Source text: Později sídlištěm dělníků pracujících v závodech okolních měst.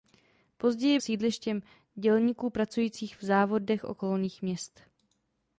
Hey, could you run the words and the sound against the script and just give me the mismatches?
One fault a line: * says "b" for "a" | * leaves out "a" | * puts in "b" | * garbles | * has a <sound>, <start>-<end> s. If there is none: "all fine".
all fine